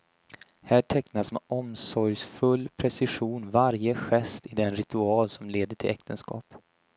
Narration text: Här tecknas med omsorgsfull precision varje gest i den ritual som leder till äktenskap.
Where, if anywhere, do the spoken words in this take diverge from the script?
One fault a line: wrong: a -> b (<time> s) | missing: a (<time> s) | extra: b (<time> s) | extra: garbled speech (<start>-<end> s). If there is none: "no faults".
no faults